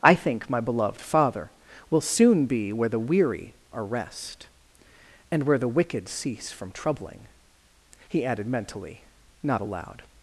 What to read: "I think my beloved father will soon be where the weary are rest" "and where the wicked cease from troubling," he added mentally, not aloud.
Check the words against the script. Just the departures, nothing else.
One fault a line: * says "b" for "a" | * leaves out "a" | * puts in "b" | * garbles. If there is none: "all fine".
all fine